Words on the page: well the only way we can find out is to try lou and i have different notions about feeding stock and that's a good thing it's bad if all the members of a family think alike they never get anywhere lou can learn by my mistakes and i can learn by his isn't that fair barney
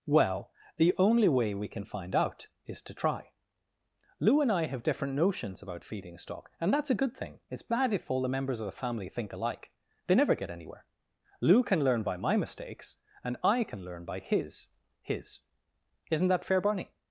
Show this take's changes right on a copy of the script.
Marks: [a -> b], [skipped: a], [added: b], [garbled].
well the only way we can find out is to try lou and i have different notions about feeding stock and that's a good thing it's bad if all the members of a family think alike they never get anywhere lou can learn by my mistakes and i can learn by his [added: his] isn't that fair barney